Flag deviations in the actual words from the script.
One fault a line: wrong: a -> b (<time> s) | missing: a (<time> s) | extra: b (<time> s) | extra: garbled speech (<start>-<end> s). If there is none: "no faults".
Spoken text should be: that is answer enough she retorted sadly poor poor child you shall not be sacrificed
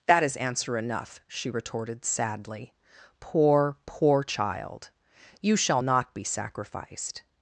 no faults